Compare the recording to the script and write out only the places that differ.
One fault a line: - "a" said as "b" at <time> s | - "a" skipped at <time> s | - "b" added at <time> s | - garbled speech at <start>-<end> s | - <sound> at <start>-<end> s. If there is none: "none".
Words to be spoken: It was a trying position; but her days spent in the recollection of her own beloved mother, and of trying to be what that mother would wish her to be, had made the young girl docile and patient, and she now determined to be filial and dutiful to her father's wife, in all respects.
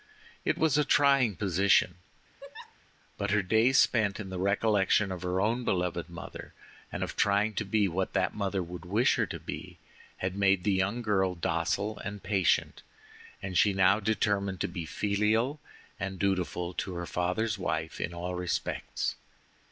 - laugh at 2.4-2.8 s